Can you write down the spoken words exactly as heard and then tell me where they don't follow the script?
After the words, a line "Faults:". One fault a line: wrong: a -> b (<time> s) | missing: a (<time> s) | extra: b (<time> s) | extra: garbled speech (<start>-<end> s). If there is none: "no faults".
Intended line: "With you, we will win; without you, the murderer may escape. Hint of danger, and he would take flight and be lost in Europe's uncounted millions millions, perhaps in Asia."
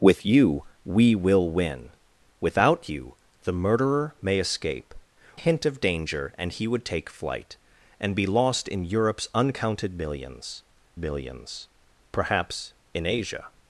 "With you, we will win; without you, the murderer may escape. Hint of danger, and he would take flight and be lost in Europe's uncounted millions millions, perhaps in Asia."
Faults:
no faults